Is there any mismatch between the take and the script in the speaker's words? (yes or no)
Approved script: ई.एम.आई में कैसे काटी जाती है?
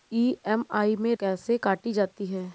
no